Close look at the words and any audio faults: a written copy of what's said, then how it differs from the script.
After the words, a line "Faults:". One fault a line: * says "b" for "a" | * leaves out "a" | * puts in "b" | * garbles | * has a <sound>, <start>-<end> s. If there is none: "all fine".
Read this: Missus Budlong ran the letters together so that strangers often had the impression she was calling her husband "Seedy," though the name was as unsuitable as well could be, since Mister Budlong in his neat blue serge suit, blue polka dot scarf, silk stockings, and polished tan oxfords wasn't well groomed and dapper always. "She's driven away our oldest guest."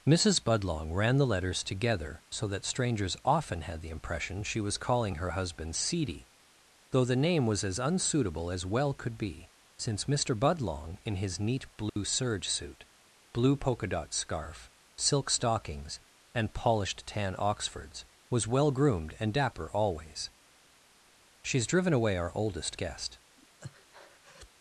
Missus Budlong ran the letters together so that strangers often had the impression she was calling her husband "Seedy," though the name was as unsuitable as well could be, since Mister Budlong in his neat blue serge suit, blue polka dot scarf, silk stockings, and polished tan oxfords was well groomed and dapper always. "She's driven away our oldest guest."
Faults:
* has a dropout, 11.9-12.0 s
* says "was" for "wasn't"
* has a breath, 23.4-24.5 s